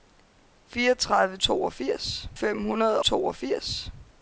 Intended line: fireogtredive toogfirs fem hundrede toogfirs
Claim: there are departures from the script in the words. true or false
false